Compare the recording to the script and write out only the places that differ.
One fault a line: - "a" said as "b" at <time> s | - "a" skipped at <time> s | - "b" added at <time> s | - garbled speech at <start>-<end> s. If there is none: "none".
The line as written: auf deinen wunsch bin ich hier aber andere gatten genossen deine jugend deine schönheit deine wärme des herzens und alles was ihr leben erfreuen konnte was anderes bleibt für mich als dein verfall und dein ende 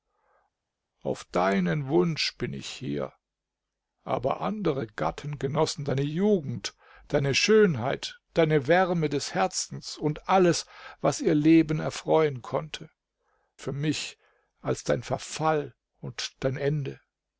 - "was anderes bleibt" skipped at 12.9 s